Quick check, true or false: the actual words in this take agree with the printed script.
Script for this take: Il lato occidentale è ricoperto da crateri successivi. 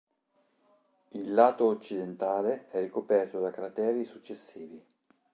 true